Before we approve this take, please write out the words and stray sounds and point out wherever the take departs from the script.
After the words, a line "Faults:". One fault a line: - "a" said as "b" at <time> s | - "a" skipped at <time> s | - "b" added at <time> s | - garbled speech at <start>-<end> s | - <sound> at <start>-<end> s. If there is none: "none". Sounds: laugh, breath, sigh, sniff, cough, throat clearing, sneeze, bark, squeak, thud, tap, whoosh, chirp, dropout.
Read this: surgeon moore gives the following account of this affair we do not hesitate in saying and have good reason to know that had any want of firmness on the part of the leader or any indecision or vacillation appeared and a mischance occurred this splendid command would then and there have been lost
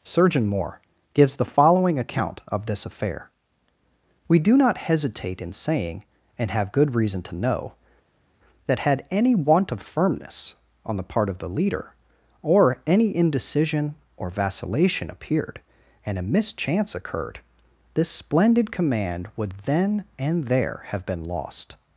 surgeon moore gives the following account of this affair we do not hesitate in saying and have good reason to know that had any want of firmness on the part of the leader or any indecision or vacillation appeared and a mischance occurred this splendid command would then and there have been lost
Faults:
none